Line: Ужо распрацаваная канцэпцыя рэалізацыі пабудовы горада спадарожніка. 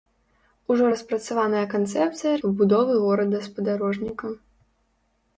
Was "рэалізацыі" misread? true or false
true